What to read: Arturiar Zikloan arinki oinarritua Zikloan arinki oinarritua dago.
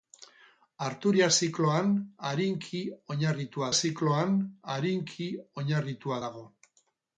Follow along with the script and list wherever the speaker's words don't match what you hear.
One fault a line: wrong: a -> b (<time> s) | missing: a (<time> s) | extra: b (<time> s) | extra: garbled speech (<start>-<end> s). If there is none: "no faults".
no faults